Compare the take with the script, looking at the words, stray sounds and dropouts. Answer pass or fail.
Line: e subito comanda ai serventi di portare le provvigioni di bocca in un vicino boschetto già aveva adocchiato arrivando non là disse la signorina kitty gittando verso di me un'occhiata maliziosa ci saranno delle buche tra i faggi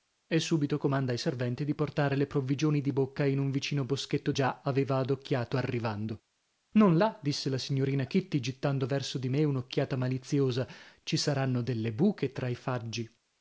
pass